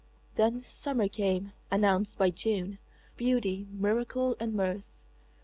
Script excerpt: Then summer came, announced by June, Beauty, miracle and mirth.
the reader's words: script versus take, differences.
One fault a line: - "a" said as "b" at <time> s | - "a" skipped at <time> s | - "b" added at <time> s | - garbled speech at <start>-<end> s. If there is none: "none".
none